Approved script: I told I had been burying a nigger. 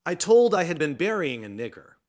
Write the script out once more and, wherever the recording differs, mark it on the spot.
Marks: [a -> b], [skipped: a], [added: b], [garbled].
I told I had been burying a nigger.